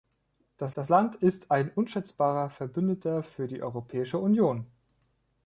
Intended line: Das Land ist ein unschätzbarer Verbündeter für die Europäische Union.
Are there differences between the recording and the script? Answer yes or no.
yes